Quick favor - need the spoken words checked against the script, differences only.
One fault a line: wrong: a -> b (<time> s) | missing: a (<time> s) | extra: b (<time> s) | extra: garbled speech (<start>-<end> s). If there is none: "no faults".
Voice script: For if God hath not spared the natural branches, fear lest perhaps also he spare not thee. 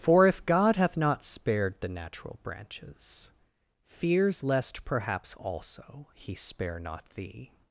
wrong: fear -> fears (3.8 s)